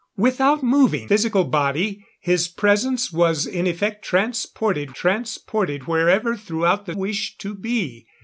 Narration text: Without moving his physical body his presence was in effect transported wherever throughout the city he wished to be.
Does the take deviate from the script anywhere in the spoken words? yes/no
yes